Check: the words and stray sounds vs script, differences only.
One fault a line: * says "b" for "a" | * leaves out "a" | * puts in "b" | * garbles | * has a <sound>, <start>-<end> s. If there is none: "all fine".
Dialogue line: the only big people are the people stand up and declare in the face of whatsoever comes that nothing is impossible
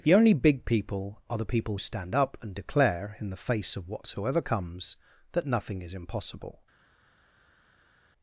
all fine